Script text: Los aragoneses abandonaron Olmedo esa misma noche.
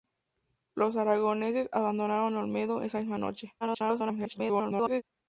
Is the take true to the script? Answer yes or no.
no